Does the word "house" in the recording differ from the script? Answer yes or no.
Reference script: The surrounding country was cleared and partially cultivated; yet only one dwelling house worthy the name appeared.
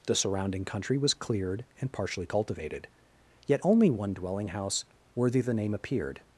no